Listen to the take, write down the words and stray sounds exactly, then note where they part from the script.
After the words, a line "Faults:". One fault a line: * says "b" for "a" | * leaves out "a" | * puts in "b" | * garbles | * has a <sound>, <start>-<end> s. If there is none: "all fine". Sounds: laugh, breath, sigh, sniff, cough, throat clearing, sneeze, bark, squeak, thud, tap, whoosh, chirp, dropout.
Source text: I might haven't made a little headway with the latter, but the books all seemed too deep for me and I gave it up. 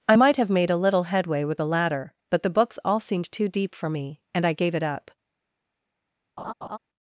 I might have made a little headway with the latter, but the books all seemed too deep for me and I gave it up.
Faults:
* says "have" for "haven't"
* has a laugh, 6.4-6.8 s